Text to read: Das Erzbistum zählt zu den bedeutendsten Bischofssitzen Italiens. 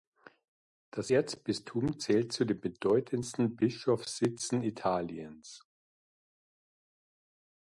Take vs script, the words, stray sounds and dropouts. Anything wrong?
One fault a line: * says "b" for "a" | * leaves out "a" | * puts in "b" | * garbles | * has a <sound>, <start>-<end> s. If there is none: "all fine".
all fine